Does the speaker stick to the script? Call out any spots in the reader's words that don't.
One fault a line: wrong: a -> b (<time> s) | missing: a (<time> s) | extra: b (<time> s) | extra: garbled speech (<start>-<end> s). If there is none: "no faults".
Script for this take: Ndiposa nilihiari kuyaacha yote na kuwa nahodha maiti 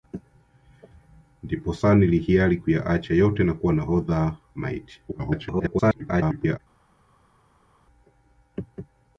extra: garbled speech (5.1-6.6 s)